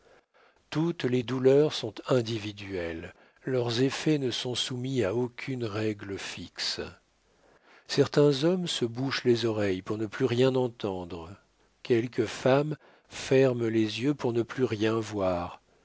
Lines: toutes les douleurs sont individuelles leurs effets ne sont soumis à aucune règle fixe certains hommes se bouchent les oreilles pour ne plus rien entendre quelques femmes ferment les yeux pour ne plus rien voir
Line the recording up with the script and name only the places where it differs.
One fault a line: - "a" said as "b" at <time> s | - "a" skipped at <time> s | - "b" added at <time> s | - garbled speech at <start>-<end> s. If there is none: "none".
none